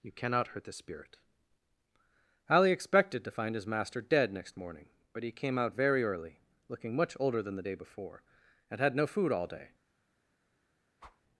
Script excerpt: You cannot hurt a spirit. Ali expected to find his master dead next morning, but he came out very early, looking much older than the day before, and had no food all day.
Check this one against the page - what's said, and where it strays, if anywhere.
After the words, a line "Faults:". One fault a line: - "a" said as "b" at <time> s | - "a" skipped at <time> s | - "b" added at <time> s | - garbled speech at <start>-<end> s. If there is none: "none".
You cannot hurt the spirit. Ali expected to find his master dead next morning, but he came out very early, looking much older than the day before, and had no food all day.
Faults:
- "a" said as "the" at 0.6 s